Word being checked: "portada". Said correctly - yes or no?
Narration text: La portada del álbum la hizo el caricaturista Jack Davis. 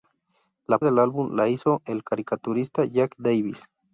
no